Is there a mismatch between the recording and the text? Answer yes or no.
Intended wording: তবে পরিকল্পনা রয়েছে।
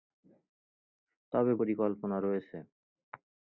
no